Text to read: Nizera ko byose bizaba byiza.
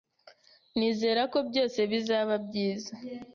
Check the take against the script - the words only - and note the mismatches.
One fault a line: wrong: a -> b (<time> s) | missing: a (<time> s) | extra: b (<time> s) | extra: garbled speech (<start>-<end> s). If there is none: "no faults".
no faults